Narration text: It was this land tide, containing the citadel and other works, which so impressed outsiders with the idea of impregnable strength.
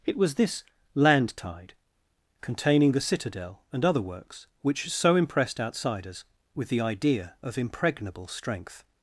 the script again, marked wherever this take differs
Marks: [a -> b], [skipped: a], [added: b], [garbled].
It was this land tide, containing the citadel and other works, which so impressed outsiders with the idea of impregnable strength.